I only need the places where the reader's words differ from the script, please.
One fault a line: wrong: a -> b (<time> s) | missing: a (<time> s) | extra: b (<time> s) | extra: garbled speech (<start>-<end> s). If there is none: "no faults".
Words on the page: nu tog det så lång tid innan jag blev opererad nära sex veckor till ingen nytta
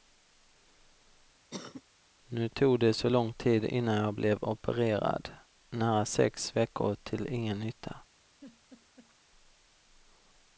no faults